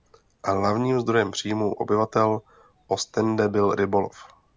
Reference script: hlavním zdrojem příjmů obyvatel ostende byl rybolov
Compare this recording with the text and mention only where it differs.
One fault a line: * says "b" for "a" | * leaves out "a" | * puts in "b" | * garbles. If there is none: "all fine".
all fine